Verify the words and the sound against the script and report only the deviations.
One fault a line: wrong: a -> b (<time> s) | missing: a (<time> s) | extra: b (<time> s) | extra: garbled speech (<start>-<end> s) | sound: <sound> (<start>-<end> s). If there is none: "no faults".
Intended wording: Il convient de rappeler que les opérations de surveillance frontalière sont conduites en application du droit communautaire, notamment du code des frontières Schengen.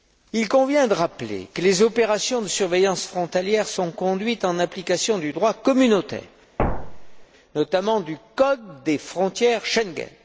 sound: thud (6.6-7.3 s)